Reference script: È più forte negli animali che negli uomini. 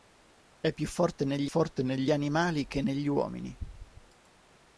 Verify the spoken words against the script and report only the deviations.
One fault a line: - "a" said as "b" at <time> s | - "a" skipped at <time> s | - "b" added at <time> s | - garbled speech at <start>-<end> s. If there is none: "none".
- "forte negli" added at 1.4 s